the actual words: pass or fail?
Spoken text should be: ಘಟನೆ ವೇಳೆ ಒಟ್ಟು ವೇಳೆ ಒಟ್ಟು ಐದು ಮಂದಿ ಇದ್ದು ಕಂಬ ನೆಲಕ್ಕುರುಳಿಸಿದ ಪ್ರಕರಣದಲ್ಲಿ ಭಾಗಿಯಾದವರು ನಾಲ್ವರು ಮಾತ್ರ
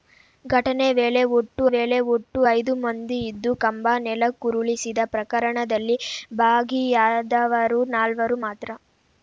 pass